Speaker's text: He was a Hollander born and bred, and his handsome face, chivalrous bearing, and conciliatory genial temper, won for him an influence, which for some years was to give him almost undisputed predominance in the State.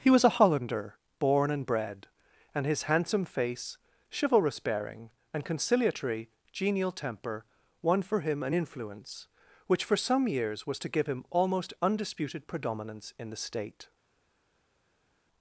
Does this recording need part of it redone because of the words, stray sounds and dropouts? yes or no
no